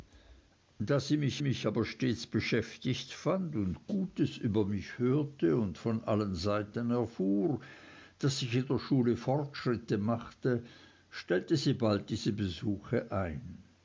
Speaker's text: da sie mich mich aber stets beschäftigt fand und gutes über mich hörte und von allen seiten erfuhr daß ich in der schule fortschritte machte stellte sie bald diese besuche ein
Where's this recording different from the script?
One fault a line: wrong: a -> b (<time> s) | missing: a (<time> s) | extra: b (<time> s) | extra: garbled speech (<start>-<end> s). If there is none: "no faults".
no faults